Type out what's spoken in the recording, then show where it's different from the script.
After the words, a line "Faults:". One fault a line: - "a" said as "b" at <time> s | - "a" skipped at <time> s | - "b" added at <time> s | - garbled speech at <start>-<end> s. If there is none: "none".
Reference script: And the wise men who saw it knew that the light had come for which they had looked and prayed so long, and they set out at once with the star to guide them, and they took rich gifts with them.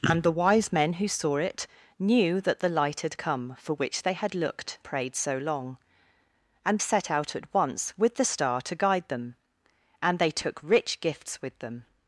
And the wise men who saw it knew that the light had come for which they had looked prayed so long, and set out at once with the star to guide them, and they took rich gifts with them.
Faults:
- "and" skipped at 4.8 s
- "they" skipped at 6.8 s